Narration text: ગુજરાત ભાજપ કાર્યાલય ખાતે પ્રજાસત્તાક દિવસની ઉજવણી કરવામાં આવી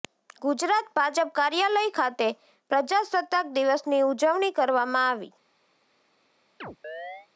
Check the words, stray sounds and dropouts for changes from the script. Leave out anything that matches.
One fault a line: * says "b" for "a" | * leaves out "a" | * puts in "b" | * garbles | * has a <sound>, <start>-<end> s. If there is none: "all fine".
* has a chirp, 6.6-7.3 s